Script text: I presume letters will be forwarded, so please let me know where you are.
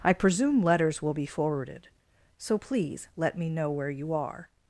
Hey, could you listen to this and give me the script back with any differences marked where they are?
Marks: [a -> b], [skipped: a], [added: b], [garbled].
I presume letters will be forwarded, so please let me know where you are.